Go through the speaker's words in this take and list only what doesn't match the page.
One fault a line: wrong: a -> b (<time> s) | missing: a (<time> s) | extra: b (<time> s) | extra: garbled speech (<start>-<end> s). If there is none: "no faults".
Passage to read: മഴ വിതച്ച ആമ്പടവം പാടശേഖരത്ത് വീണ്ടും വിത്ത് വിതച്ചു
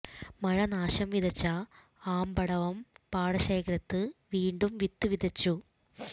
extra: നാശം (0.7 s)